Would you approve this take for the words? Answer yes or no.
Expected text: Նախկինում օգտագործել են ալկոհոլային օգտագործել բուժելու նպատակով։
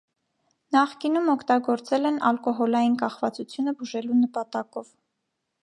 no